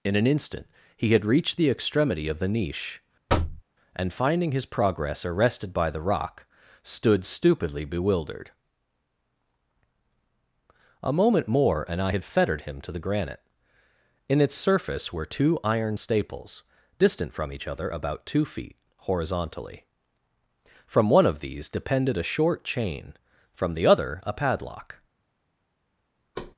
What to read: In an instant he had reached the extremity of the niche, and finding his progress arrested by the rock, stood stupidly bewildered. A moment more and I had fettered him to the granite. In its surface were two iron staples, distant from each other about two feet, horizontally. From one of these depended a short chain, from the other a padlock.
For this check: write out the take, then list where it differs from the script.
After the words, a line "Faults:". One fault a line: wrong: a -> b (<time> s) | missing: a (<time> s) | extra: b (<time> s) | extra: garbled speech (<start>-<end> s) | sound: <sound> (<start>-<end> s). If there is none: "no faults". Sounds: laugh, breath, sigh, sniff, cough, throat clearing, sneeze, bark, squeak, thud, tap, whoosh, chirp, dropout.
In an instant he had reached the extremity of the niche, and finding his progress arrested by the rock, stood stupidly bewildered. A moment more and I had fettered him to the granite. In its surface were two iron staples, distant from each other about two feet, horizontally. From one of these depended a short chain, from the other a padlock.
Faults:
sound: thud (3.3-3.6 s)
sound: thud (26.3-26.5 s)